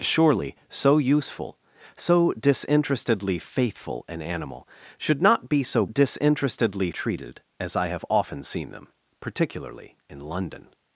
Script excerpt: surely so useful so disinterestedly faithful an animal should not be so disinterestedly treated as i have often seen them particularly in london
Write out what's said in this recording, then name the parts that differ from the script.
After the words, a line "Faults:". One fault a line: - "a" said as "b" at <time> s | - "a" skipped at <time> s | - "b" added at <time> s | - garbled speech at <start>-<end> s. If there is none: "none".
surely so useful so disinterestedly faithful an animal should not be so disinterestedly treated as i have often seen them particularly in london
Faults:
none